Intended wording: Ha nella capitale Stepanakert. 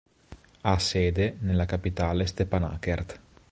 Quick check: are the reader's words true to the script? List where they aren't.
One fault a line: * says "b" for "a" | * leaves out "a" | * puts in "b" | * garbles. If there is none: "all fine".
* puts in "sede"